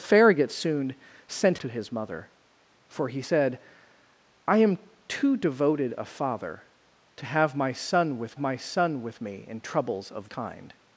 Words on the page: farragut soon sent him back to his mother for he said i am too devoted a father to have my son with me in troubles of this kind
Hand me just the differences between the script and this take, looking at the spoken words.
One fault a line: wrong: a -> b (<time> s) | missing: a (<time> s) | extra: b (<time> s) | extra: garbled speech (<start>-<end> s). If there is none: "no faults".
missing: him back (1.6 s)
extra: my son with (8.4 s)
missing: this (10.3 s)